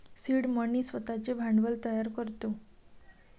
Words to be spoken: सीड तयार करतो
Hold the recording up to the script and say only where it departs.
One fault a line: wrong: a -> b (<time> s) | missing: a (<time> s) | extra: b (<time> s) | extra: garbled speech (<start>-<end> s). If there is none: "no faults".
extra: मनी स्वतःचे भांडवल (0.5 s)